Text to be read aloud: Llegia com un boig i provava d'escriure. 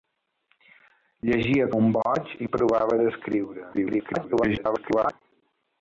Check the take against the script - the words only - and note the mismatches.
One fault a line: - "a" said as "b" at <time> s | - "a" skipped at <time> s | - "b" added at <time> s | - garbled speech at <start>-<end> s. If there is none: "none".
- "com" skipped at 1.7 s
- garbled speech at 3.7-5.1 s